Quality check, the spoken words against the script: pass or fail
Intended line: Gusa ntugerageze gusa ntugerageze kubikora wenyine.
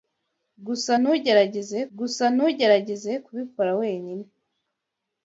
pass